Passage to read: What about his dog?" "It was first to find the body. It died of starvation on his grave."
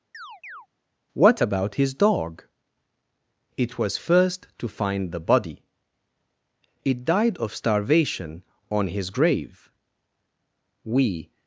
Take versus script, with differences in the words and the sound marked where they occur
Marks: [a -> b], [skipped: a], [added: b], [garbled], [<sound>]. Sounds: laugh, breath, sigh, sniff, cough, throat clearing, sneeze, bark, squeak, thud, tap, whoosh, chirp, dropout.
[chirp] What about his dog?" "It was first to find the body. It died of starvation on his grave." [added: We]